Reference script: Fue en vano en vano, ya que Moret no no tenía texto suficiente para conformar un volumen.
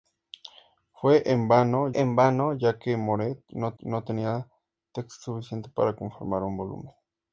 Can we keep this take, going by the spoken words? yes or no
yes